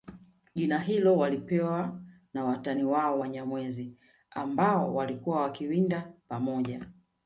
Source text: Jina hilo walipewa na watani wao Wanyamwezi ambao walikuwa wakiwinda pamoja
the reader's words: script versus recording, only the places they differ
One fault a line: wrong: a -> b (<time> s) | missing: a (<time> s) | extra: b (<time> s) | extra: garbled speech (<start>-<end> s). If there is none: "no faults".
no faults